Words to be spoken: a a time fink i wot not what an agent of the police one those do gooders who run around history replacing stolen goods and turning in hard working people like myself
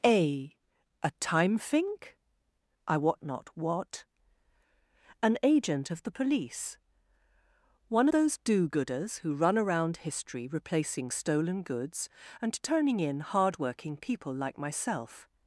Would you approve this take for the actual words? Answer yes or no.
yes